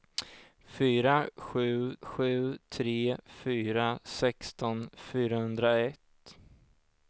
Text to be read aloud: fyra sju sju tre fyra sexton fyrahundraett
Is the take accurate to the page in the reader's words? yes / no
yes